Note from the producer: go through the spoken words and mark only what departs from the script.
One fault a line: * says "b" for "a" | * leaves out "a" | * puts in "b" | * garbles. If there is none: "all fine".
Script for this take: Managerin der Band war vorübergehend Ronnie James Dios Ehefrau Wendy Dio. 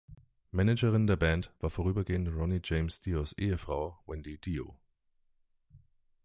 all fine